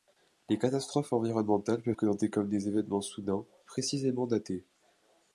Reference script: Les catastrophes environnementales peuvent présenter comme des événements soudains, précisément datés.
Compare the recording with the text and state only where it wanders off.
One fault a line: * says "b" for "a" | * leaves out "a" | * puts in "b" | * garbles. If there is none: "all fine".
all fine